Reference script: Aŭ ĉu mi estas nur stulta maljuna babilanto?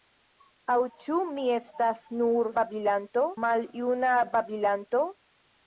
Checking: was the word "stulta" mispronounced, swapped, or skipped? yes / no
yes